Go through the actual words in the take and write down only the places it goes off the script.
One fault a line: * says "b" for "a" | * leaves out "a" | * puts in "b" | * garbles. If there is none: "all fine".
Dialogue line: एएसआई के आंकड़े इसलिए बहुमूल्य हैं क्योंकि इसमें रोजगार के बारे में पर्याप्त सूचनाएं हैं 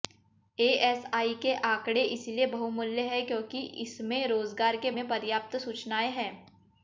* leaves out "बारे"